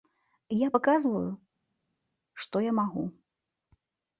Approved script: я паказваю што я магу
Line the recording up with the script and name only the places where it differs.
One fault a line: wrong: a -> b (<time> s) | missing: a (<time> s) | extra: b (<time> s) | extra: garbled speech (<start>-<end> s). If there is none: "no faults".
no faults